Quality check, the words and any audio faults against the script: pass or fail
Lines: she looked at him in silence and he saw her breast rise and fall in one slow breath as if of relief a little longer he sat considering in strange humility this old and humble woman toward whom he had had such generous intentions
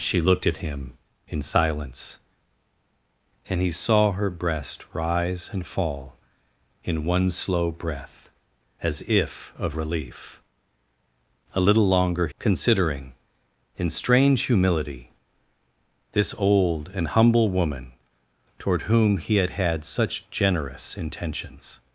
fail